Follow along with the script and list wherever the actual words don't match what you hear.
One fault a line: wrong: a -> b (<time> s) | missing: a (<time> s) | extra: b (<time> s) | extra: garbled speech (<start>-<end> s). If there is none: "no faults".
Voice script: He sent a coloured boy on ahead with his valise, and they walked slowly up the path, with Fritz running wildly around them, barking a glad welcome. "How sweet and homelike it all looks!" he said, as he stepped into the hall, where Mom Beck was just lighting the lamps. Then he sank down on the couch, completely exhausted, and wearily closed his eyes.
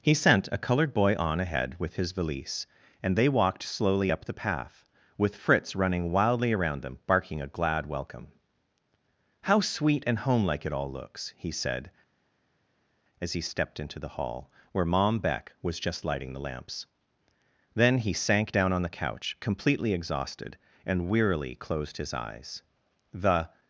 extra: The (23.1 s)